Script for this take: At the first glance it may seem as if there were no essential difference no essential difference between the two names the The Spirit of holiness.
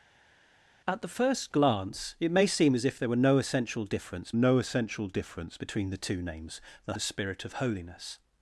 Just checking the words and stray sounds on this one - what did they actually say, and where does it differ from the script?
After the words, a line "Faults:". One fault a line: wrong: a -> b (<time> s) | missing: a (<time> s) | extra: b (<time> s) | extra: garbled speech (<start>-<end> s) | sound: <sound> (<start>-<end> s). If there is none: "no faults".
At the first glance it may seem as if there were no essential difference no essential difference between the two names the The Spirit of holiness.
Faults:
no faults